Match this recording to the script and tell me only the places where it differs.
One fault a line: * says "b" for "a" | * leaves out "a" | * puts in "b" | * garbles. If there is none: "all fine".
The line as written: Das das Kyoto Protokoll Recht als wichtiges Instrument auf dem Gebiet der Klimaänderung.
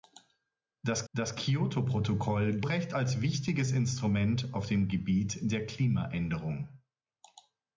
all fine